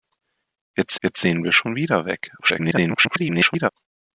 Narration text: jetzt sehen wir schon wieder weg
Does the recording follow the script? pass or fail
fail